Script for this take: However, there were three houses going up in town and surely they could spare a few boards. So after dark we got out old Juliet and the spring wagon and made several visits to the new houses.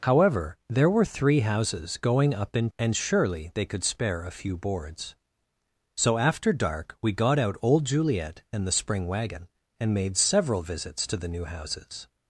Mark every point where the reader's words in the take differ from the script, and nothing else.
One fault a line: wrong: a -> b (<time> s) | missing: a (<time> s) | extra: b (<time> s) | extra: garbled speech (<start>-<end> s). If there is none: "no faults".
missing: town (2.7 s)